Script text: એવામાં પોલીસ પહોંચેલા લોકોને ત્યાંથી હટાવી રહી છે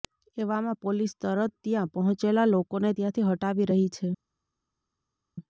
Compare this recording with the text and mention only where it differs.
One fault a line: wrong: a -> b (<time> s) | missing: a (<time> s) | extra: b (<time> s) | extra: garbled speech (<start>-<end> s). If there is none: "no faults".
extra: તરત ત્યાં (1.2 s)